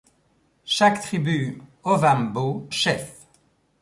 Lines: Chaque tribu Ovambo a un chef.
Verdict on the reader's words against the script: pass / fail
fail